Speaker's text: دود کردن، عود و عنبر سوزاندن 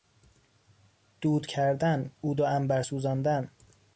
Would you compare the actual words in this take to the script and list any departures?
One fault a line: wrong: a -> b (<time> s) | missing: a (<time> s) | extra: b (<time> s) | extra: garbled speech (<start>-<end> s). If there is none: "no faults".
no faults